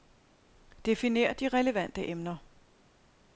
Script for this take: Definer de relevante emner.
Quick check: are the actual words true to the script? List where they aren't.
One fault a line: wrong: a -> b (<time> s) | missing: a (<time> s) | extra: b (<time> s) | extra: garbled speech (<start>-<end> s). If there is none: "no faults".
no faults